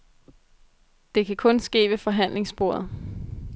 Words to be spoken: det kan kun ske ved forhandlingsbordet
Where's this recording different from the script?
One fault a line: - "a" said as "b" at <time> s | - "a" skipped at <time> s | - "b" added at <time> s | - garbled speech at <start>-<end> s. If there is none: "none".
none